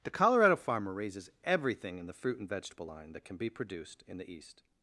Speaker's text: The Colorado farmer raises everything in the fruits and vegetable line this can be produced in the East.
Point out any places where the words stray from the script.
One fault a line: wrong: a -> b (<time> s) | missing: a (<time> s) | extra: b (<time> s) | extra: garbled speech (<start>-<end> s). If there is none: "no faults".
wrong: fruits -> fruit (2.1 s)
wrong: this -> that (3.1 s)